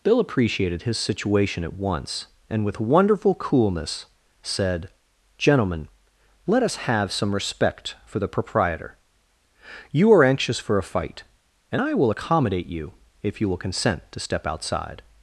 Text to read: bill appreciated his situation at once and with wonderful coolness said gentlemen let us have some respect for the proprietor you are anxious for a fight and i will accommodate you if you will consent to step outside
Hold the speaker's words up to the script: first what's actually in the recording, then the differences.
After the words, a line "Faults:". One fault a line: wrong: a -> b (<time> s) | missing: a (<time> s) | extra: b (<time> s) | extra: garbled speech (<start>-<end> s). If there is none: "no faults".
bill appreciated his situation at once and with wonderful coolness said gentlemen let us have some respect for the proprietor you are anxious for a fight and i will accommodate you if you will consent to step outside
Faults:
no faults